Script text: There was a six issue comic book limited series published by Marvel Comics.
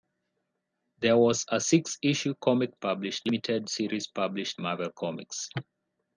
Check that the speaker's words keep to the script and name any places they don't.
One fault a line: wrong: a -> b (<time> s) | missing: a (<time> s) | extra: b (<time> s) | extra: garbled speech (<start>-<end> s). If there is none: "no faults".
wrong: book -> published (2.7 s)
missing: by (4.6 s)